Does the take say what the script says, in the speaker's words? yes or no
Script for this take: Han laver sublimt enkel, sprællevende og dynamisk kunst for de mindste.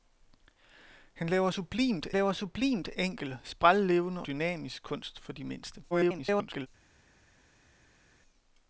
no